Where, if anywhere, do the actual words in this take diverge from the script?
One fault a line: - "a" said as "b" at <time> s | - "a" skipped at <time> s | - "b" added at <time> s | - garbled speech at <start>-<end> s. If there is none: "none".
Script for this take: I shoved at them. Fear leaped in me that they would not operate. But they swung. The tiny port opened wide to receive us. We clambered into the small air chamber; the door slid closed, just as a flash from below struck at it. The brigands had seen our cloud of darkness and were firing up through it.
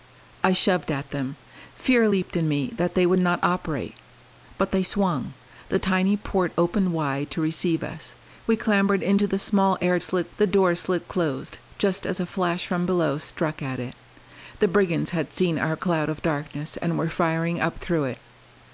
- "chamber" said as "slid" at 10.0 s